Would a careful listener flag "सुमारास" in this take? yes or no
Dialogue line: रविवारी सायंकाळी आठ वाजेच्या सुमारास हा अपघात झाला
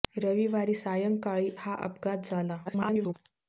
yes